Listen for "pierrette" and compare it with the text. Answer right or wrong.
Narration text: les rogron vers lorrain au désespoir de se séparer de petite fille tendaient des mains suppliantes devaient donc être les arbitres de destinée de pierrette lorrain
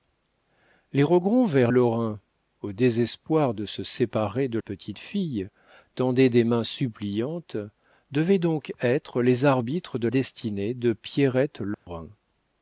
right